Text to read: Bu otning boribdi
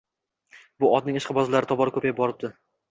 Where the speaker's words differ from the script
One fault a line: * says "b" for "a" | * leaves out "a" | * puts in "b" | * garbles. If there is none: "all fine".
* puts in "ishqibozlari tobora ko‘payib"